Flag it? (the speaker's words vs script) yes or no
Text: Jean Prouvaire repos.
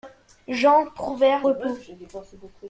no